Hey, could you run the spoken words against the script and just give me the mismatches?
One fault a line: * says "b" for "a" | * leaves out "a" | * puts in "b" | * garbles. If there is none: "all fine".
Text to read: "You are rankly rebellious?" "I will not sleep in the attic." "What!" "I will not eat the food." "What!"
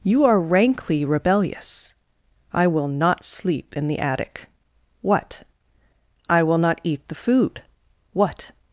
all fine